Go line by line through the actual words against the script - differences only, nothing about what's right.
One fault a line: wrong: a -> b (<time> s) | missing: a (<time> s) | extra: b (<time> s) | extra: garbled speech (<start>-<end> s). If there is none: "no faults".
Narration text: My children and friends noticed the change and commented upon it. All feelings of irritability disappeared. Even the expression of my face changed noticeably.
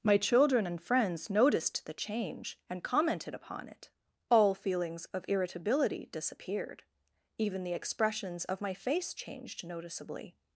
wrong: expression -> expressions (7.7 s)